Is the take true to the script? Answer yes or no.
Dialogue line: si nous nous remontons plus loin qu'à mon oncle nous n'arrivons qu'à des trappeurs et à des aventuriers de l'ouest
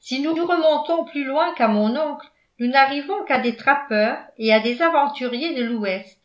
yes